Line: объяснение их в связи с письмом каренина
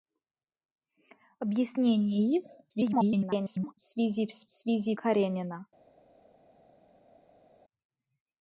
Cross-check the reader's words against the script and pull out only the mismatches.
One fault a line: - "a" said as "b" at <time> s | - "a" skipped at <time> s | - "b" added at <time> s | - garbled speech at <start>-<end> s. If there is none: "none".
- garbled speech at 2.7-3.7 s
- "письмом" said as "связи" at 4.5 s